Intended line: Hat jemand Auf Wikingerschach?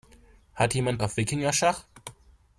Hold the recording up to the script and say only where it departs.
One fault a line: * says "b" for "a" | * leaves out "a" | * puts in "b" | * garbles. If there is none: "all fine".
all fine